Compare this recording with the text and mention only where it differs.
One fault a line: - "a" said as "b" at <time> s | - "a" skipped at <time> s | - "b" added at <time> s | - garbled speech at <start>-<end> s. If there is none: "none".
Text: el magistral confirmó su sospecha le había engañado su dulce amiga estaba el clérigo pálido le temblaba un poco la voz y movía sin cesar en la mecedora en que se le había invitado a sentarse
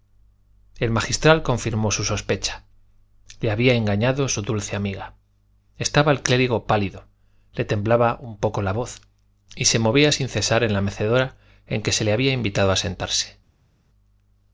- "se" added at 9.7 s